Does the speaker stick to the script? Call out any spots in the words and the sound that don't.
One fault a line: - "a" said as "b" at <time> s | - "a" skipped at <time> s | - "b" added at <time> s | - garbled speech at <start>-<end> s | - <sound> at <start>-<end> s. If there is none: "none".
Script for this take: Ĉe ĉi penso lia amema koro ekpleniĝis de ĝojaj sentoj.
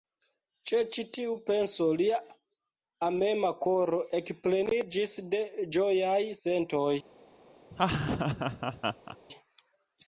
- "tiu" added at 1.2 s
- laugh at 7.7-9.2 s